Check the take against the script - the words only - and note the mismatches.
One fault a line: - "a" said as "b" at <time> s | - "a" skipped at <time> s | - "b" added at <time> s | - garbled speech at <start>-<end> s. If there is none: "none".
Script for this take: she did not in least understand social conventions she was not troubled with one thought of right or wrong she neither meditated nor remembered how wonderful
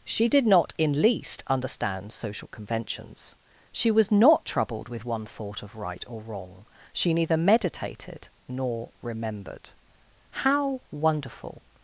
none